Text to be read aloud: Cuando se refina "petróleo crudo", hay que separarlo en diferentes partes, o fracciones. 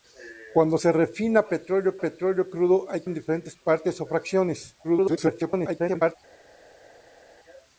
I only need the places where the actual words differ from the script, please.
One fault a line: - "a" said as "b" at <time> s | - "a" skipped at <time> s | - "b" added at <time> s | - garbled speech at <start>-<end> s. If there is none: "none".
- "petróleo" added at 2.0 s
- "que separarlo" skipped at 3.1 s
- garbled speech at 4.8-6.2 s